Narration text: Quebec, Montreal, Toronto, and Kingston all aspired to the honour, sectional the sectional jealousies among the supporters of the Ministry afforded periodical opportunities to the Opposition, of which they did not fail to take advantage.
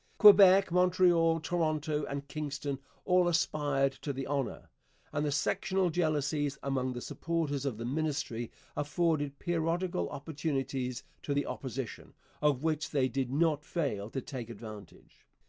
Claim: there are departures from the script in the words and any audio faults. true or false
true